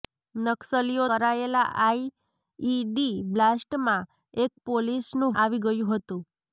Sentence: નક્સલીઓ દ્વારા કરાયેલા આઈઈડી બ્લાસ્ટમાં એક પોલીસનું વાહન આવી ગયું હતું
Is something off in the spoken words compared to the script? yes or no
yes